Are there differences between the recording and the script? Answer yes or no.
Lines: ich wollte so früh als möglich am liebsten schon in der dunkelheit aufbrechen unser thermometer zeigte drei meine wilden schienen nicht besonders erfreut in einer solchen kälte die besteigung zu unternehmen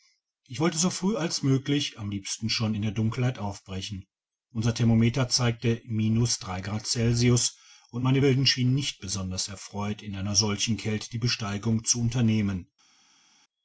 yes